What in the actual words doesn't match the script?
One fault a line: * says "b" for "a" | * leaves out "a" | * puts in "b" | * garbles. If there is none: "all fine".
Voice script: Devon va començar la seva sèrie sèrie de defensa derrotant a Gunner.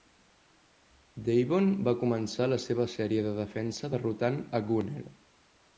* leaves out "sèrie"